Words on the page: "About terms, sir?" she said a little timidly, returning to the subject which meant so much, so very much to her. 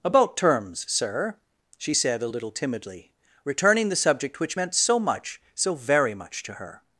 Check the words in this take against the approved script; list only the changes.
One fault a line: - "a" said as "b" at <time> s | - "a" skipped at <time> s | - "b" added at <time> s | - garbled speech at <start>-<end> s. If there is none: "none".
- "to" skipped at 3.9 s